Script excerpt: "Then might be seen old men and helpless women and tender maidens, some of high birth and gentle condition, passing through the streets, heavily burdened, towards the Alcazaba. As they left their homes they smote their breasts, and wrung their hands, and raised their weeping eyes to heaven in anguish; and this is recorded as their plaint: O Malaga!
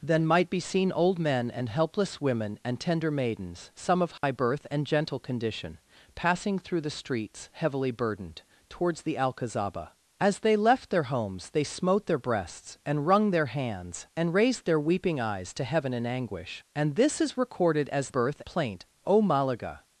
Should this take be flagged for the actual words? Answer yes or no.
yes